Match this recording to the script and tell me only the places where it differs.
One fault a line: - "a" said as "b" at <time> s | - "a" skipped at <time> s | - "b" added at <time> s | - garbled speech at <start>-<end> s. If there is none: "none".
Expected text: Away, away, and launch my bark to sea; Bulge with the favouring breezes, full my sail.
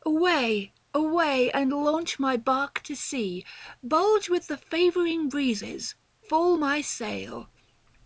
none